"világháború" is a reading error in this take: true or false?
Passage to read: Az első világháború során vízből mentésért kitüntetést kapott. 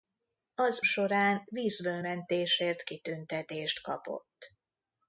true